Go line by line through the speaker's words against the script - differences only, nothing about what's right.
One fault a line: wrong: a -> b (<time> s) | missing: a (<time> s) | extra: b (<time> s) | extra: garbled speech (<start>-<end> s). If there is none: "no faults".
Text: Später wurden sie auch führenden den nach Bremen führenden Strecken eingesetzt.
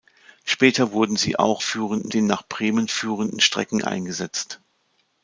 no faults